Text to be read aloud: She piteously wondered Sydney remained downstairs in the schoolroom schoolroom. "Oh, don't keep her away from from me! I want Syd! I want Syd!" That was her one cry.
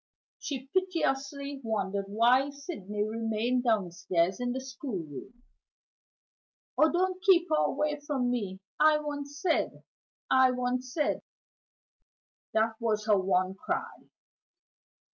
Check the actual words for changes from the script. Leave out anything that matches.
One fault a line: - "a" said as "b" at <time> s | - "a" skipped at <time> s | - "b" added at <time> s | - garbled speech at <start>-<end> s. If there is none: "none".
- "why" added at 2.1 s
- "schoolroom" skipped at 5.4 s
- "from" skipped at 8.3 s